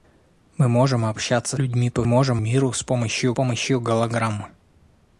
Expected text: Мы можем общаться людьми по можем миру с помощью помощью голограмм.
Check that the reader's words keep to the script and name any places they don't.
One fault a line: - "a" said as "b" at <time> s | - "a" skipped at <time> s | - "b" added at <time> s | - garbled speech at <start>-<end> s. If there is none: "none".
none